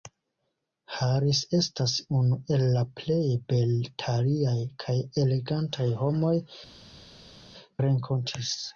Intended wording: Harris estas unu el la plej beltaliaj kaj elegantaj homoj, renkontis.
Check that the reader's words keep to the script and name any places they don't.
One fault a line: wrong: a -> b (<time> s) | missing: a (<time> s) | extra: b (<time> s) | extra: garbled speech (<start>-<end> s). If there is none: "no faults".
no faults